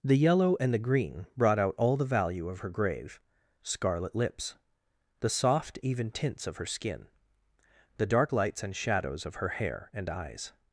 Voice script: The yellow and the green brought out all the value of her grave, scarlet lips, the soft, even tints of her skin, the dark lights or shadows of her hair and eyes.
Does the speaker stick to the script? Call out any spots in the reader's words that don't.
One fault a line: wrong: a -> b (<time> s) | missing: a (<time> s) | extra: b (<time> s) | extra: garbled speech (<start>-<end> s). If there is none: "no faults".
wrong: or -> and (8.6 s)